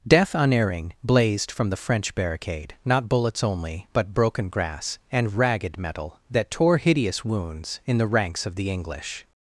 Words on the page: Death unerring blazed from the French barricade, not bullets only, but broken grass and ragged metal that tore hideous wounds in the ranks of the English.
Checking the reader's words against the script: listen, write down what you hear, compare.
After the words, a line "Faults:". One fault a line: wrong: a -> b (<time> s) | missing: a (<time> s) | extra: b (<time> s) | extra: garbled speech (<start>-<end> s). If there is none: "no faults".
Death unerring blazed from the French barricade, not bullets only, but broken grass and ragged metal that tore hideous wounds in the ranks of the English.
Faults:
no faults